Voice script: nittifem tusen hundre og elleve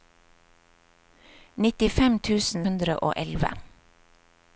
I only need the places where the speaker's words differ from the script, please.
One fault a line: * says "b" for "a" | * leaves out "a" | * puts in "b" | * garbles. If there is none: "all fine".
all fine